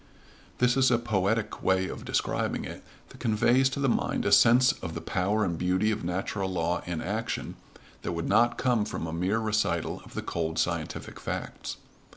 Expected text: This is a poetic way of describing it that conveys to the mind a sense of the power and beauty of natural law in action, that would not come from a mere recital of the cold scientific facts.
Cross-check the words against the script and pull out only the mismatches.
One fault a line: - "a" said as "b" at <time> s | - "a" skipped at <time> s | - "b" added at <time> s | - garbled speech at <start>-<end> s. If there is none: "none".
none